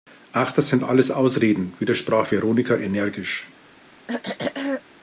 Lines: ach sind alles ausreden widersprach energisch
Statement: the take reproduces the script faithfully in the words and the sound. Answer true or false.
false